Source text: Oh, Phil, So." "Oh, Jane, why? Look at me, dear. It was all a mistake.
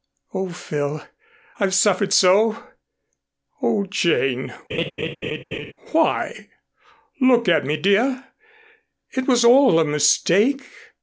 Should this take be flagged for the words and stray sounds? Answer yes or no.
yes